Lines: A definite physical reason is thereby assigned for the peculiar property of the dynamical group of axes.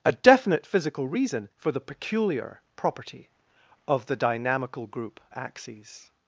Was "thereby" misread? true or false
true